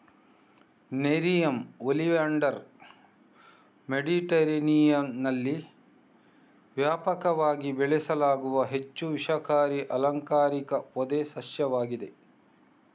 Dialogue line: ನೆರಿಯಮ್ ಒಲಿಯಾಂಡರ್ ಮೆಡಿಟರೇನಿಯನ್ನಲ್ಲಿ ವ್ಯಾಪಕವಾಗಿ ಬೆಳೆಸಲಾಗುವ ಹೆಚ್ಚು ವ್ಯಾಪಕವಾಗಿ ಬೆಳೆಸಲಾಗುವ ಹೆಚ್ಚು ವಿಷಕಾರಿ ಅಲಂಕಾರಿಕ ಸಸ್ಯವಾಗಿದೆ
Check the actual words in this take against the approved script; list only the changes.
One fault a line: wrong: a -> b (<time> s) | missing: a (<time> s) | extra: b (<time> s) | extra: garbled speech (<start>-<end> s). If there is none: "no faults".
missing: ವ್ಯಾಪಕವಾಗಿ ಬೆಳೆಸಲಾಗುವ ಹೆಚ್ಚು (9.1 s)
extra: ಪೊದೆ (10.9 s)